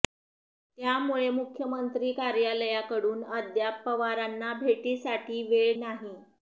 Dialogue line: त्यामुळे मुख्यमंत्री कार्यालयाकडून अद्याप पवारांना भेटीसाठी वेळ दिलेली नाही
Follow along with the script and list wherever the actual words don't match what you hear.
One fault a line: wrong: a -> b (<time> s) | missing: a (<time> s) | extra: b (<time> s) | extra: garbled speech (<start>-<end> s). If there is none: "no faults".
missing: दिलेली (5.8 s)